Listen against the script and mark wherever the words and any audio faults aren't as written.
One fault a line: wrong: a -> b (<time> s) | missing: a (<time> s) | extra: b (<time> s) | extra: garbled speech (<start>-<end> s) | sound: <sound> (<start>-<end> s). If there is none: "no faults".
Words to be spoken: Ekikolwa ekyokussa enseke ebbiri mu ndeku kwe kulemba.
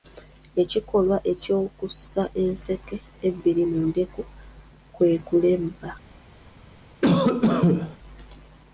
sound: cough (7.0-8.0 s)